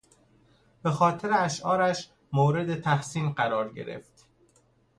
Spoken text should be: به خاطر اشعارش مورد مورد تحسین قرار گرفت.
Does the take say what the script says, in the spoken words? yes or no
no